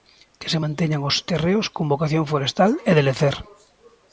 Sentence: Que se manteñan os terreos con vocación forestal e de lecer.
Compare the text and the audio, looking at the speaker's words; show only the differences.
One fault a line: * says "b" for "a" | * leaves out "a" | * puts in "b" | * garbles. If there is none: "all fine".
all fine